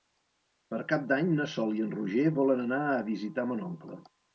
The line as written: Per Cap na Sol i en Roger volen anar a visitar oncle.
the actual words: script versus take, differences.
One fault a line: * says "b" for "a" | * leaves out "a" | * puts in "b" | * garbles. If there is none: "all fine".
* puts in "d'Any"
* puts in "mon"